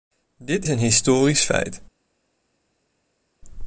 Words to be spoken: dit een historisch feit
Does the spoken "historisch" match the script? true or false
true